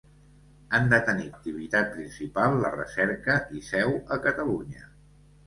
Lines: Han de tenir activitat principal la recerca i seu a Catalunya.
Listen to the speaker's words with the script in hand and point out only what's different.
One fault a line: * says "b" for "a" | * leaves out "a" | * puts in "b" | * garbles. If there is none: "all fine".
all fine